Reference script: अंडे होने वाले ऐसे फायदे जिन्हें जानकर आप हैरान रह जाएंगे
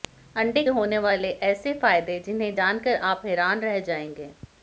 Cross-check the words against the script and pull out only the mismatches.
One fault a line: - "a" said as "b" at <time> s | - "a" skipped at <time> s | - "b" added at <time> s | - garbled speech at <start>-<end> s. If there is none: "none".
none